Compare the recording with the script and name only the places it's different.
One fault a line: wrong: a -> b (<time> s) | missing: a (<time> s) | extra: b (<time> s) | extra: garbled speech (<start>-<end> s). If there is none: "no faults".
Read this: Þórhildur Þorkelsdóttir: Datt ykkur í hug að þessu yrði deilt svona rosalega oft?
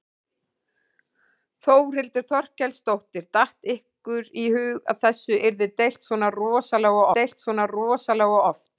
extra: deilt svona rosalega (7.2 s)